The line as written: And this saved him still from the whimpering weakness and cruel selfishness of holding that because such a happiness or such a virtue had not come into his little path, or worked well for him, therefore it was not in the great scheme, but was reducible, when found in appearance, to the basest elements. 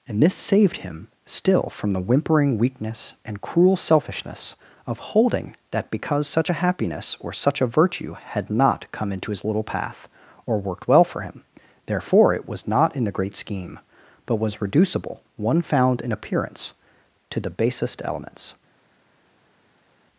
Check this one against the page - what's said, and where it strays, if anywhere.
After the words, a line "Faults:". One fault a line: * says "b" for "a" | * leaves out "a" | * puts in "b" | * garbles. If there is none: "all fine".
And this saved him still from the whimpering weakness and cruel selfishness of holding that because such a happiness or such a virtue had not come into his little path, or worked well for him, therefore it was not in the great scheme, but was reducible, one found in appearance, to the basest elements.
Faults:
* says "one" for "when"